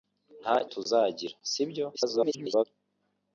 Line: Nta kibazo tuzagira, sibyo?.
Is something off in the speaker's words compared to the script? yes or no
yes